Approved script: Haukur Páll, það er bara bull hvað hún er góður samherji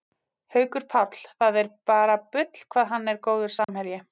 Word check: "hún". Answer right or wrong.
wrong